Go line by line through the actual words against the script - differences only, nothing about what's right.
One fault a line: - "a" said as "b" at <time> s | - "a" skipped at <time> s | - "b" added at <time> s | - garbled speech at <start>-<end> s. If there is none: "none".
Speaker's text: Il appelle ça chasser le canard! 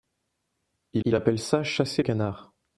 - "il" added at 1.0 s
- "le" skipped at 2.0 s